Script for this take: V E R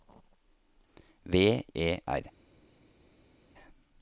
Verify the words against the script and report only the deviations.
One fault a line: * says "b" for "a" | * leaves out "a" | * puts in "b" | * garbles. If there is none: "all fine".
all fine